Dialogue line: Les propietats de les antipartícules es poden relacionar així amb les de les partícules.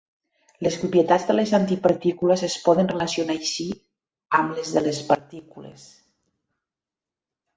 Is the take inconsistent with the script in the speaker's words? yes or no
no